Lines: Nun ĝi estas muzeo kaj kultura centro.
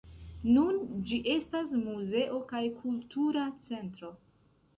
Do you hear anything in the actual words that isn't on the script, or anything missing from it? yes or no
no